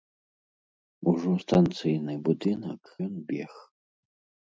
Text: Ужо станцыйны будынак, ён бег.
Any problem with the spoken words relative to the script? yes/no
no